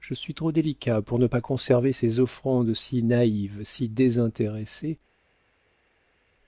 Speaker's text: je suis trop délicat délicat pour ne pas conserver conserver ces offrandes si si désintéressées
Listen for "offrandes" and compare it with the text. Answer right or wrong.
right